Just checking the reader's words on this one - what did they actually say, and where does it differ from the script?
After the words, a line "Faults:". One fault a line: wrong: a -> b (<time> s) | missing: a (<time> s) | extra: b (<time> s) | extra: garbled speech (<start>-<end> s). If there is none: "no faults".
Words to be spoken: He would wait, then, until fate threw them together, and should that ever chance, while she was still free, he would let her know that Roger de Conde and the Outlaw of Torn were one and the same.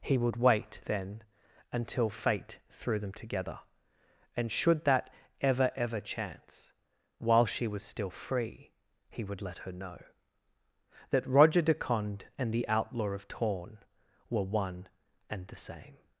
He would wait, then, until fate threw them together, and should that ever ever chance, while she was still free, he would let her know that Roger de Conde and the Outlaw of Torn were one and the same.
Faults:
extra: ever (5.8 s)